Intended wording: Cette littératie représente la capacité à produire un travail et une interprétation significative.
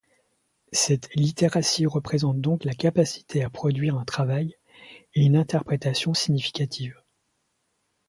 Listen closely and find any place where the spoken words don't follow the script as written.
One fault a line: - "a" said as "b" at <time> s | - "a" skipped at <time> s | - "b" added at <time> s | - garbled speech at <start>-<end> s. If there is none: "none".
- "donc" added at 2.4 s